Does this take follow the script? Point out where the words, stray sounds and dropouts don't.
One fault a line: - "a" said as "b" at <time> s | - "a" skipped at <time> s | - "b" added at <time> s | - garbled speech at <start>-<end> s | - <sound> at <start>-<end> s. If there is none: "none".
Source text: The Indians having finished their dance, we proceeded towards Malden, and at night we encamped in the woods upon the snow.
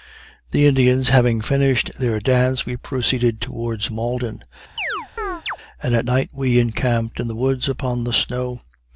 - chirp at 4.8-5.6 s